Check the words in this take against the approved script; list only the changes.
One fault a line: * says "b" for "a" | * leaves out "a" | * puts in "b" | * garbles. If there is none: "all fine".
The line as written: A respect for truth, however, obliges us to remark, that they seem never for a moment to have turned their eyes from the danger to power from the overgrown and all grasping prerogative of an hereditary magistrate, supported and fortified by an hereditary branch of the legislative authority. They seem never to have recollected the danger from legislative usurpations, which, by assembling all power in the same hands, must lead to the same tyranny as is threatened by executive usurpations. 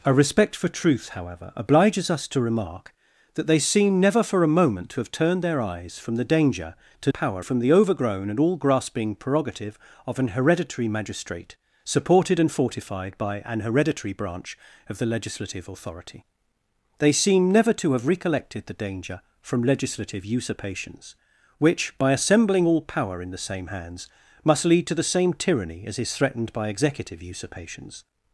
all fine